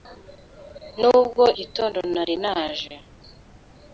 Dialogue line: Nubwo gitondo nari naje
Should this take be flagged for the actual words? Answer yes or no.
no